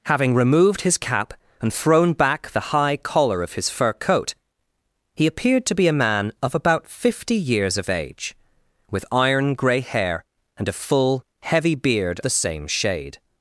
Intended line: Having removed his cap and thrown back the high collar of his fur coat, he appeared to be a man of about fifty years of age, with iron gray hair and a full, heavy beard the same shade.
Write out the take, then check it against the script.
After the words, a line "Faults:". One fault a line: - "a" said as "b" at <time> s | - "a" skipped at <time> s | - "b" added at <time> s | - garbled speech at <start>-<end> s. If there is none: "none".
Having removed his cap and thrown back the high collar of his fur coat, he appeared to be a man of about fifty years of age, with iron gray hair and a full, heavy beard the same shade.
Faults:
none